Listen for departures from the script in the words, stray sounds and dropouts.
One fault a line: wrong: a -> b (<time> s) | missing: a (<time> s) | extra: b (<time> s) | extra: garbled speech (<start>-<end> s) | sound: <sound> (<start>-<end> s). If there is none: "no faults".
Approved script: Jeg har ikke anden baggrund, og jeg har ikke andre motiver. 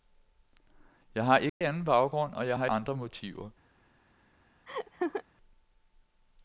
sound: dropout (1.5-1.6 s)
missing: ikke (2.7 s)
sound: laugh (4.7-5.2 s)